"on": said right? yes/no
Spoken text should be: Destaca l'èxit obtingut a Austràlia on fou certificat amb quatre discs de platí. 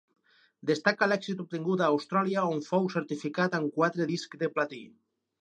yes